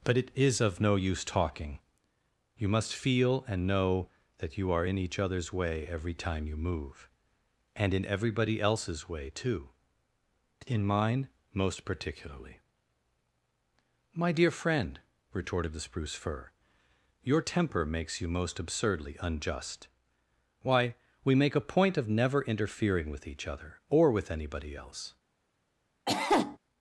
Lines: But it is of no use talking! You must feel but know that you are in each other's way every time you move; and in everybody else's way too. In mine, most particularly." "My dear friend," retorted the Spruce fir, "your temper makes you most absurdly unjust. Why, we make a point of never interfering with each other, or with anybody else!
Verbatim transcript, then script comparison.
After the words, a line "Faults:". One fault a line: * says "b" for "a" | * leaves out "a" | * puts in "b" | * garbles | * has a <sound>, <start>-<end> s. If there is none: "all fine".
But it is of no use talking! You must feel and know that you are in each other's way every time you move; and in everybody else's way too. In mine, most particularly." "My dear friend," retorted the Spruce fir, "your temper makes you most absurdly unjust. Why, we make a point of never interfering with each other, or with anybody else!
Faults:
* says "and" for "but"
* has a cough, 26.1-26.6 s